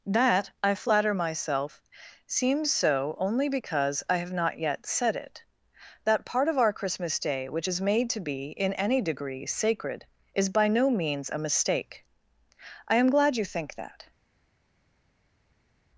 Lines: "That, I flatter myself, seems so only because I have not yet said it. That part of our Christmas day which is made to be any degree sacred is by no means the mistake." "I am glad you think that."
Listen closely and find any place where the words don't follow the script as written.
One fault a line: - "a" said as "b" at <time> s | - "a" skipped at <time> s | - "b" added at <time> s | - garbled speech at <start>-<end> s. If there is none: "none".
- "in" added at 8.5 s
- "the" said as "a" at 11.3 s